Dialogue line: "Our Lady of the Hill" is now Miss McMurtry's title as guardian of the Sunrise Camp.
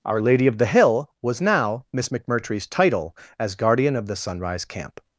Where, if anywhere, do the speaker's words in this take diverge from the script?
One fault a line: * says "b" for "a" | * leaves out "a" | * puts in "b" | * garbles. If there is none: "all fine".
* says "was" for "is"